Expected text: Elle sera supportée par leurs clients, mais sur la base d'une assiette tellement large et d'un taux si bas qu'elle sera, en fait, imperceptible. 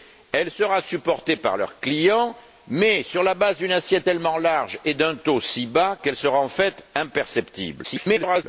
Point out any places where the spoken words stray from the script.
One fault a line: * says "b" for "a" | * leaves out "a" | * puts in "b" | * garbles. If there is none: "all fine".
* garbles